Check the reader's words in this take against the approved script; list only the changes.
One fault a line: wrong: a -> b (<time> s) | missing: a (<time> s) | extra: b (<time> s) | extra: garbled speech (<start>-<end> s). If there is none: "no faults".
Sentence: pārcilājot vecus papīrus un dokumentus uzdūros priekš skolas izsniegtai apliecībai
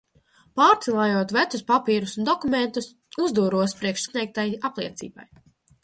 missing: skolas (4.1 s)